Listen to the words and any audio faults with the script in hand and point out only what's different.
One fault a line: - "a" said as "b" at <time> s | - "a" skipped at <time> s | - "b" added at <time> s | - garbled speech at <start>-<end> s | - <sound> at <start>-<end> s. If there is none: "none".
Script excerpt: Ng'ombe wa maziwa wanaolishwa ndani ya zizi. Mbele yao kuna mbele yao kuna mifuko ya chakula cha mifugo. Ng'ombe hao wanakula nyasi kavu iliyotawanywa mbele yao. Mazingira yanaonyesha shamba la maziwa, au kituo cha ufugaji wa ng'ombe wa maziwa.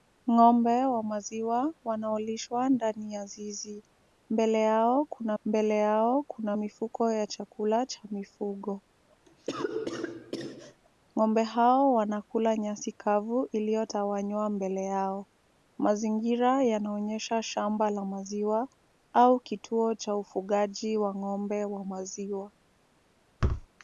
- cough at 9.3-10.8 s
- thud at 23.4-23.7 s